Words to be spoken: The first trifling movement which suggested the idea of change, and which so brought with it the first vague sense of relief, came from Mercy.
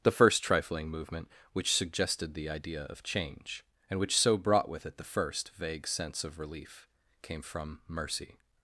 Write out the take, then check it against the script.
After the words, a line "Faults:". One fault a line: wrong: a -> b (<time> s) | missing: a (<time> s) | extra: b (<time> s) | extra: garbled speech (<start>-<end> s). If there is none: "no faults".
The first trifling movement which suggested the idea of change, and which so brought with it the first vague sense of relief, came from Mercy.
Faults:
no faults